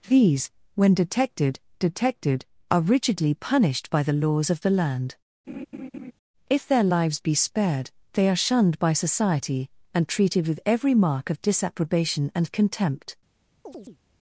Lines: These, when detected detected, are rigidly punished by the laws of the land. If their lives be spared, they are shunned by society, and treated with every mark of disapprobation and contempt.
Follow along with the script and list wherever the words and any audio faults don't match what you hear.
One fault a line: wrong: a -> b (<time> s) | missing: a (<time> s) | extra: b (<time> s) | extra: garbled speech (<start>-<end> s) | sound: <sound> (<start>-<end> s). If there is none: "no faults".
sound: laugh (5.5-6.1 s)
sound: chirp (13.7-14.0 s)